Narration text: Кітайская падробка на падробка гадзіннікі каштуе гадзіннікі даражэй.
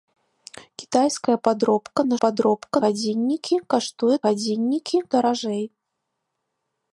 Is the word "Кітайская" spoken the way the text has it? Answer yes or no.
yes